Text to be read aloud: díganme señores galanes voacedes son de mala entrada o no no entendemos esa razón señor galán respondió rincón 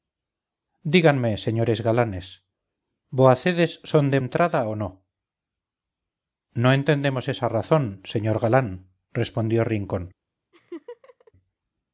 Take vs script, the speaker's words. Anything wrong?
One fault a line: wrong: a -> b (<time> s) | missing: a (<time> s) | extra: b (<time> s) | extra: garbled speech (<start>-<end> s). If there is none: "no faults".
missing: mala (4.2 s)